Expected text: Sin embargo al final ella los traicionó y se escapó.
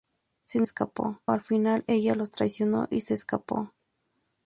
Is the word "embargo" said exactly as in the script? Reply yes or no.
no